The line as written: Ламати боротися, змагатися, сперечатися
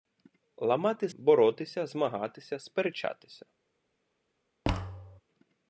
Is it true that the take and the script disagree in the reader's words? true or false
false